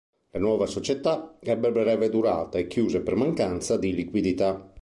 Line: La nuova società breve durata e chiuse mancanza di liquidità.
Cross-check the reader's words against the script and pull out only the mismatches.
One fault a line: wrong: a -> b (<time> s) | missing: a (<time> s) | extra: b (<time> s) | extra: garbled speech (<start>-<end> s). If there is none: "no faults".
extra: ebbe (1.4 s)
extra: per (3.0 s)